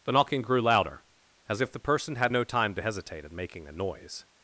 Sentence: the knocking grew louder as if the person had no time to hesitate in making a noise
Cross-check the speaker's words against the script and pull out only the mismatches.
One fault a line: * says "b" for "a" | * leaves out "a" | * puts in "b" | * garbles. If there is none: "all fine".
all fine